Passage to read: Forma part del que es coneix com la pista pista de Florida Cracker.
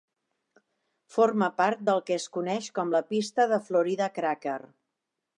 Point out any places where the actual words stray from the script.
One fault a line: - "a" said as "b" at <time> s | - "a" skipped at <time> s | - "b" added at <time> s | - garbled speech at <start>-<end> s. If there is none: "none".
- "pista" skipped at 3.5 s